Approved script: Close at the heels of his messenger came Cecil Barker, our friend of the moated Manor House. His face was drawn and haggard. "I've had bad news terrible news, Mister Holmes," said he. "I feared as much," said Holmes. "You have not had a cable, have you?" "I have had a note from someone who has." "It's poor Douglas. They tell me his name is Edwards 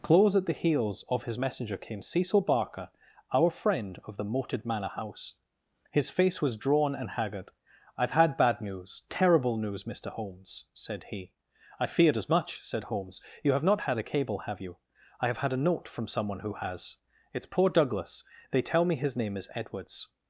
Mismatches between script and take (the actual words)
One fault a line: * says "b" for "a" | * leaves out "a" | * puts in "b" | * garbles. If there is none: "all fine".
all fine